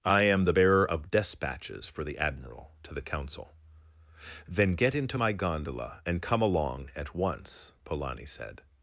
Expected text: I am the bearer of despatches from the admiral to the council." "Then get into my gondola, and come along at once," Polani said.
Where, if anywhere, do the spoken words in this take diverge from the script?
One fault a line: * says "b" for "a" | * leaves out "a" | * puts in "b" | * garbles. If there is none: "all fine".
* says "for" for "from"